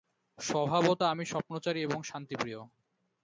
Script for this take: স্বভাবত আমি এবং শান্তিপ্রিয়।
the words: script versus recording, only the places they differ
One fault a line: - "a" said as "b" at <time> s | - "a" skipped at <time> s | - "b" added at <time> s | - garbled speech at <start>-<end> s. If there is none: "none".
- "স্বপ্নচারী" added at 1.2 s